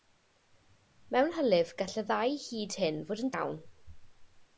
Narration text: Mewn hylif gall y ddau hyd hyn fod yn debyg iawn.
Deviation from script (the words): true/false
true